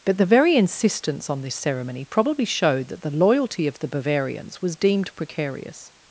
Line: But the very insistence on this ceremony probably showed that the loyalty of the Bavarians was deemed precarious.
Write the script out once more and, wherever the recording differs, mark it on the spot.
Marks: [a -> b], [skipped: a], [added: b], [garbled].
But the very insistence on this ceremony probably showed that the loyalty of the Bavarians was deemed precarious.